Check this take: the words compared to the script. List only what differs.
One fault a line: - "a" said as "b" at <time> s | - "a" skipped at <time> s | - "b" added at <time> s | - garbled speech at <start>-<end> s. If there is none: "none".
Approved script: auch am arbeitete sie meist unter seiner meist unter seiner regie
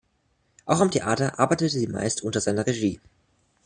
- "theater" added at 0.9 s
- "meist unter seiner" skipped at 2.7 s